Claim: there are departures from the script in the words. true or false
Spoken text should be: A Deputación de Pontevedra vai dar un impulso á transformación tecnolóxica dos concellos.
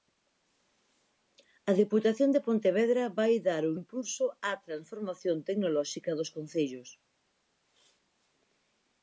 false